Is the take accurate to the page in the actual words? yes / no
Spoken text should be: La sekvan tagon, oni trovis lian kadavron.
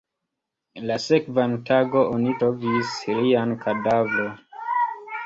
yes